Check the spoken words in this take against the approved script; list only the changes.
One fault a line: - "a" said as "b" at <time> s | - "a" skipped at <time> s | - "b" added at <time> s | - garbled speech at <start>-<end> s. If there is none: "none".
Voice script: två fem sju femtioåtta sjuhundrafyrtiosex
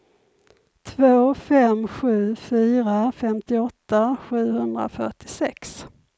- "fyra" added at 2.3 s